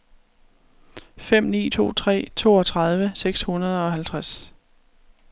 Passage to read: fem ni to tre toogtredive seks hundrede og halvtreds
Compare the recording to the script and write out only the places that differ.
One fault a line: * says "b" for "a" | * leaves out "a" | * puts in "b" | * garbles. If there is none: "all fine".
all fine